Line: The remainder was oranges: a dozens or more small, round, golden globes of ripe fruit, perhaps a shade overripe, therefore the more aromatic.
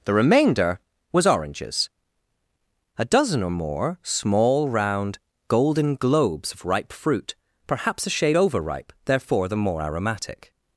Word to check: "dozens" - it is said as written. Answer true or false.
false